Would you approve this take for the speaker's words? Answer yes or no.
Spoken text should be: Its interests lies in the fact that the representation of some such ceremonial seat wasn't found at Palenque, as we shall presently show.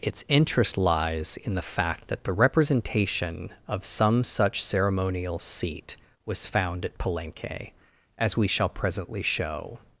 no